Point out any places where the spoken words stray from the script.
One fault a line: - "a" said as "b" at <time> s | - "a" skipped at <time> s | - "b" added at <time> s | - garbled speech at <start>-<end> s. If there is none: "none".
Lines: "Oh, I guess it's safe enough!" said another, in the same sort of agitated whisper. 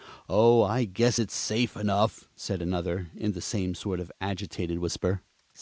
none